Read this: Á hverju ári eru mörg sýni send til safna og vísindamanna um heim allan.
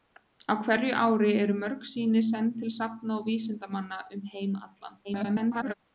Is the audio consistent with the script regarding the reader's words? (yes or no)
no